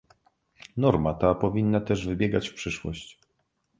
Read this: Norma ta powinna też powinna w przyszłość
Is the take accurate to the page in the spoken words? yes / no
no